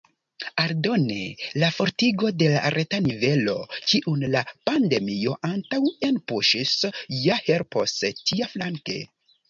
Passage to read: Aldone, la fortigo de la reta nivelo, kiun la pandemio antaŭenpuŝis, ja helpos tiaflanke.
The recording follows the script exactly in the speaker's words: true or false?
true